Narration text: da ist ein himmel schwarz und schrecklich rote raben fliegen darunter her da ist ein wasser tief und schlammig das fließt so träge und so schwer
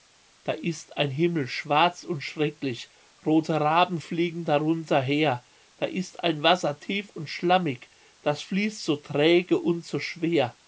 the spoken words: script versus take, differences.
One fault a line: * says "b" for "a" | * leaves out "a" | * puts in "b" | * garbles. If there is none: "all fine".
all fine